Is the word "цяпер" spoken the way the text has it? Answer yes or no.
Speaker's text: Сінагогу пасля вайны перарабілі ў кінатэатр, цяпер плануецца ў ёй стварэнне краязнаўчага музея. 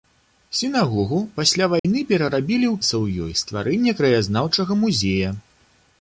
no